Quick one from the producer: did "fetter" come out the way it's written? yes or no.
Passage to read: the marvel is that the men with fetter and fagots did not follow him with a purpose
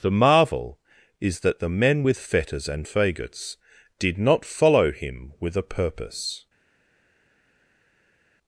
no